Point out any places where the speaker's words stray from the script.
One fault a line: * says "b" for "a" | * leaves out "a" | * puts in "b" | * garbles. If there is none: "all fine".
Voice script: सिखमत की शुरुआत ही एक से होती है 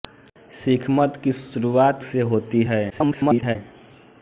* leaves out "ही एक"
* garbles